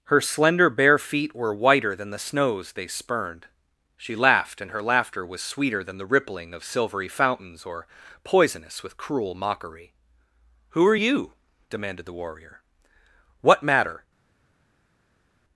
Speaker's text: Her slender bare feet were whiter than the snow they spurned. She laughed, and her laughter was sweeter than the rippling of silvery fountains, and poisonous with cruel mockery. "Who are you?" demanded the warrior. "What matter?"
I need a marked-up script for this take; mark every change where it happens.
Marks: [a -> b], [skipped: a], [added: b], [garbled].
Her slender bare feet were whiter than the [snow -> snows] they spurned. She laughed, and her laughter was sweeter than the rippling of silvery fountains, [and -> or] poisonous with cruel mockery. "Who are you?" demanded the warrior. "What matter?"